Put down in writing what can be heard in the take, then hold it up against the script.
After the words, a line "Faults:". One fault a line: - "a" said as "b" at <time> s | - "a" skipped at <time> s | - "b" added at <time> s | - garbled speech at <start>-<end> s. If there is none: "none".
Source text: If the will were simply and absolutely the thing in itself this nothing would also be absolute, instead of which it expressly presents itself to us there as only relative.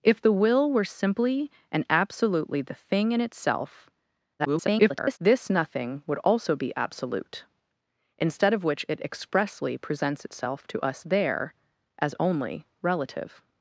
If the will were simply and absolutely the thing in itself [garbled] this nothing would also be absolute, instead of which it expressly presents itself to us there as only relative.
Faults:
- garbled speech at 4.4-5.2 s